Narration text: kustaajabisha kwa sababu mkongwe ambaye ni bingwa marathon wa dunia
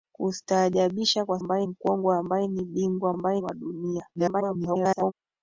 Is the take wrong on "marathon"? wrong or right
wrong